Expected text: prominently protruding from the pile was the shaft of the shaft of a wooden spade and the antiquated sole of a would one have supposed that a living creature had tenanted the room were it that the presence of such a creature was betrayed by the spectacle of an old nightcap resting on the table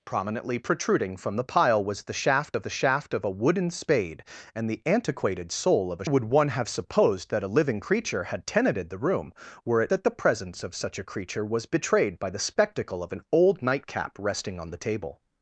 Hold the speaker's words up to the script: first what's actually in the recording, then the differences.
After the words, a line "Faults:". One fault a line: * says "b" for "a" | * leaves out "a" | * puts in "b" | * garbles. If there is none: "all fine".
prominently protruding from the pile was the shaft of the shaft of a wooden spade and the antiquated sole of a would one have supposed that a living creature had tenanted the room were it that the presence of such a creature was betrayed by the spectacle of an old nightcap resting on the table
Faults:
all fine